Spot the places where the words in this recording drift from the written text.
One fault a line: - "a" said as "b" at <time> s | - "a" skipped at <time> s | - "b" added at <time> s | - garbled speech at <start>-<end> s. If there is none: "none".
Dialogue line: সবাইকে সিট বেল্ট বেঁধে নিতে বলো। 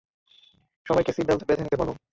none